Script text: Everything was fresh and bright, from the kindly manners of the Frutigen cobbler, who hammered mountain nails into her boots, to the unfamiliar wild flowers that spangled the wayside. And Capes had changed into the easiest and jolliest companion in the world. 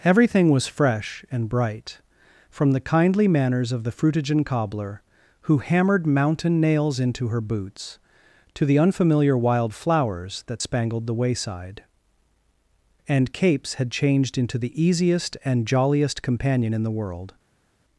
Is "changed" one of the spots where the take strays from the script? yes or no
no